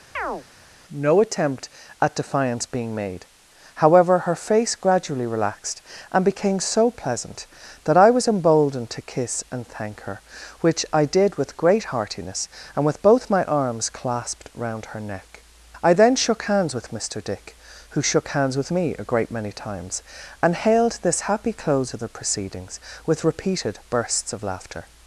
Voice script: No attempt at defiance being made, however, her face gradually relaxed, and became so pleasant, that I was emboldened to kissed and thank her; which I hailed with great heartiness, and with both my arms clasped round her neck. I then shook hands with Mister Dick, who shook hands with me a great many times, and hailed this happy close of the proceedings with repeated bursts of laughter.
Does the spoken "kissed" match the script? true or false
false